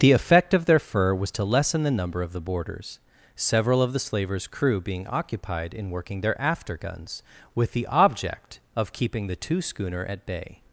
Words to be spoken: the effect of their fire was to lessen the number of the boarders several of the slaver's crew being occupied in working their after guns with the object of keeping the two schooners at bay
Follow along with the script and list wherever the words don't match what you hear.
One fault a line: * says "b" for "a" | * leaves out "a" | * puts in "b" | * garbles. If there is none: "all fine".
* says "fur" for "fire"
* says "schooner" for "schooners"